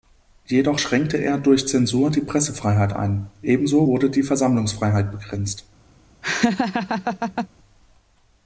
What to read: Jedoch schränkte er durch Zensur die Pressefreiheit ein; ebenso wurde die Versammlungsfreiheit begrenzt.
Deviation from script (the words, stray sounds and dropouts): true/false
true